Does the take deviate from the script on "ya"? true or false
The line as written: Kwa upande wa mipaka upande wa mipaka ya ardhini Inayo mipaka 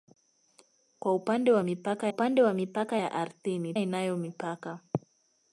false